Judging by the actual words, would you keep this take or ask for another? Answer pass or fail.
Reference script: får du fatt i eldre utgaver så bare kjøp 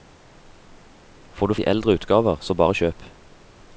fail